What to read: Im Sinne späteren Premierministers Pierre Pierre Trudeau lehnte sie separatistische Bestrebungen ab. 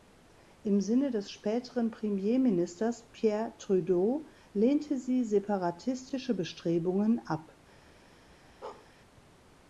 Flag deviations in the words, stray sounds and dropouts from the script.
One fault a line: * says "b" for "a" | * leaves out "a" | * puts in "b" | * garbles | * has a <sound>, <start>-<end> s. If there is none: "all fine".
* puts in "des"
* leaves out "Pierre"
* has a bark, 8.6-8.9 s